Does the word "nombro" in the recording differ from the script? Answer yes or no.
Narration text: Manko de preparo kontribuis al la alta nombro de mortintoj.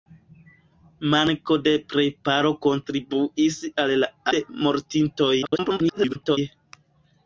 yes